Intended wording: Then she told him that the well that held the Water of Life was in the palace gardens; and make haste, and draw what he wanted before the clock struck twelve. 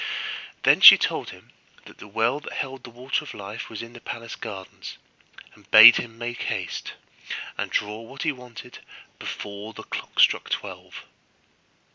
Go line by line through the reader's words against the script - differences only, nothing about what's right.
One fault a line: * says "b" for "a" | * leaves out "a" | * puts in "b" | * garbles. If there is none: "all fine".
* puts in "bade him"